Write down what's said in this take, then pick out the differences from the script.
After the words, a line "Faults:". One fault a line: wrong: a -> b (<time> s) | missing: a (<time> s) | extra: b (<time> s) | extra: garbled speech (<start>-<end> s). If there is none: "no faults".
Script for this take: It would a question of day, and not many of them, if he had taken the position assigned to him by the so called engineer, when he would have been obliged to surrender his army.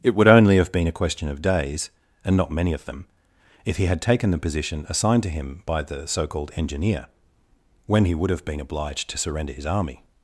It would only have been a question of days, and not many of them, if he had taken the position assigned to him by the so called engineer, when he would have been obliged to surrender his army.
Faults:
extra: only have been (0.3 s)
wrong: day -> days (1.4 s)